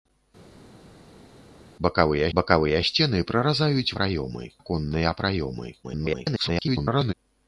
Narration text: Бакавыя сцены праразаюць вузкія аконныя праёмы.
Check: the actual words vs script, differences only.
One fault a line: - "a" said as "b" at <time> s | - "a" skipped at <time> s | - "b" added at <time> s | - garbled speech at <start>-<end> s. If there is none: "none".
- "бакавыя" added at 2.4 s
- "вузкія" said as "праёмы" at 4.0 s
- garbled speech at 5.8-7.1 s